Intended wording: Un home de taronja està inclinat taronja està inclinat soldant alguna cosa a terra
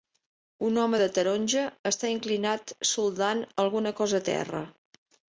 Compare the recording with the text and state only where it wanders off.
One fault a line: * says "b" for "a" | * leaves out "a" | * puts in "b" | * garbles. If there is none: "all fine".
* leaves out "taronja està inclinat"